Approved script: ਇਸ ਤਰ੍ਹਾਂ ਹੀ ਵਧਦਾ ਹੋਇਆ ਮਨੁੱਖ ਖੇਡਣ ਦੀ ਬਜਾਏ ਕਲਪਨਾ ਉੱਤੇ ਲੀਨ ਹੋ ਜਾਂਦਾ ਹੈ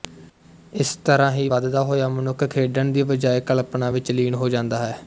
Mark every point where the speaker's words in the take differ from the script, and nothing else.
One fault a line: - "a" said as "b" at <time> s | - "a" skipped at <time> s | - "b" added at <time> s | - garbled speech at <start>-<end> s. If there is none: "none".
- "ਉੱਤੇ" said as "ਵਿੱਚ" at 3.9 s